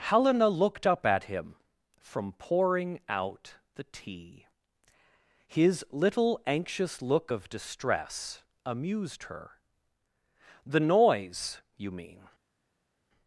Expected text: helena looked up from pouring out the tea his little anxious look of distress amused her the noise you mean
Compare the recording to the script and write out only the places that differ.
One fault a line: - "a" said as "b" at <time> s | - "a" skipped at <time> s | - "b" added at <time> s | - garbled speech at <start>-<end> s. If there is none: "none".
- "at him" added at 1.1 s